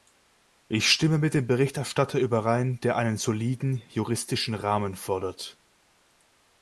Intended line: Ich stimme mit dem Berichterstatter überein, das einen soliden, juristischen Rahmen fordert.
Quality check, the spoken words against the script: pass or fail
fail